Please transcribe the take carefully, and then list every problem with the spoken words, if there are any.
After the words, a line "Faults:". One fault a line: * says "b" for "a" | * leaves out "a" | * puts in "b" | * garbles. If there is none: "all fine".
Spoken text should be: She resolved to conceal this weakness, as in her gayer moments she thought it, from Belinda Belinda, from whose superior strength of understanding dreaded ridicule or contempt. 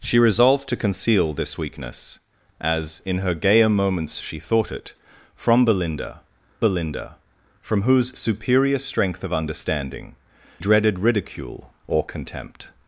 She resolved to conceal this weakness, as in her gayer moments she thought it, from Belinda Belinda, from whose superior strength of understanding dreaded ridicule or contempt.
Faults:
all fine